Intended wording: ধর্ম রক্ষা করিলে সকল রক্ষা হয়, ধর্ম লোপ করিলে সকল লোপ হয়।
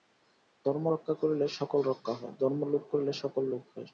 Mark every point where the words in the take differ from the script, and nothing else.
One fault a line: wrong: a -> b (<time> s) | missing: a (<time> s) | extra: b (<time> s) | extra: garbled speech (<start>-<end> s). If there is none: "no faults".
no faults